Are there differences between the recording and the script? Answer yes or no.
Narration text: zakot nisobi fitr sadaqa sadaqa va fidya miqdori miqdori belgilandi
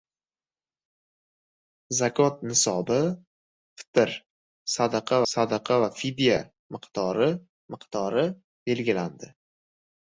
no